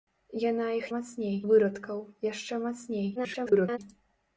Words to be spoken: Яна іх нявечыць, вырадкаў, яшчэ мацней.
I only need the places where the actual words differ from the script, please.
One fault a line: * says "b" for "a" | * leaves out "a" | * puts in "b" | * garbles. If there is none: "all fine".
* says "мацней" for "нявечыць"
* garbles